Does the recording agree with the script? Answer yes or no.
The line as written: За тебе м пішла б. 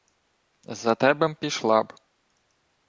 yes